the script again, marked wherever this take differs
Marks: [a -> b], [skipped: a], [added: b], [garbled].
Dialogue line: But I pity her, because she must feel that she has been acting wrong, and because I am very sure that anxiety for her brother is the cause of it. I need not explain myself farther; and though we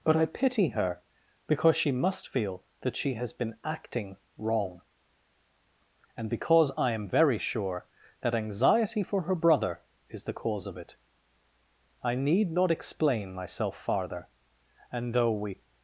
But I pity her, because she must feel that she has been acting wrong, and because I am very sure that anxiety for her brother is the cause of it. I need not explain myself farther; and though we